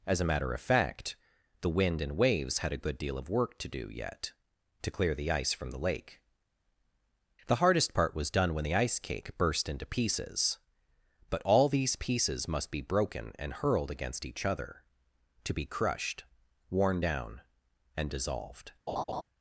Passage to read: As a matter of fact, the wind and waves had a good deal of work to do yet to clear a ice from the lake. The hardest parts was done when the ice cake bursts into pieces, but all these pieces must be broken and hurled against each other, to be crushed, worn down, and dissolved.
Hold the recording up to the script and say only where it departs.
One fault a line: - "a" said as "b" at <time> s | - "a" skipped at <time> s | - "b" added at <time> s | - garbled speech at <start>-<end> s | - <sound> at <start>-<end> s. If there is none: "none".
- "a" said as "the" at 5.1 s
- "parts" said as "part" at 7.9 s
- "bursts" said as "burst" at 9.4 s
- laugh at 18.9-19.2 s